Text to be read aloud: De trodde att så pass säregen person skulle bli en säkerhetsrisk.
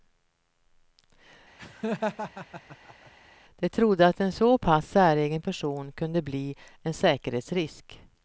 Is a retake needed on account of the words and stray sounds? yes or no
yes